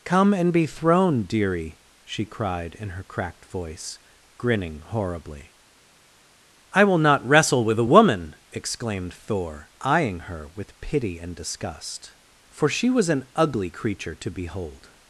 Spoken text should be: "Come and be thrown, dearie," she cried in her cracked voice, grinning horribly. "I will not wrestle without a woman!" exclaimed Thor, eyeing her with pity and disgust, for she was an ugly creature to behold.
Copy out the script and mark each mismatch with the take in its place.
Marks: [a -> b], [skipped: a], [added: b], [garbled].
"Come and be thrown, dearie," she cried in her cracked voice, grinning horribly. "I will not wrestle [without -> with] a woman!" exclaimed Thor, eyeing her with pity and disgust, for she was an ugly creature to behold.